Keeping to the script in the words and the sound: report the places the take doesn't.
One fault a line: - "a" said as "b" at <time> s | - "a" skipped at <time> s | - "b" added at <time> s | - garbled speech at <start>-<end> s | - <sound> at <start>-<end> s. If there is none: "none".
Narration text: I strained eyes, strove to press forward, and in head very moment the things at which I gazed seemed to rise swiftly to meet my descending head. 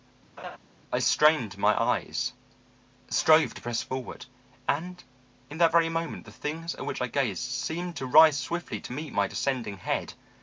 - laugh at 0.4-0.6 s
- "my" added at 1.6 s
- "head" said as "that" at 5.6 s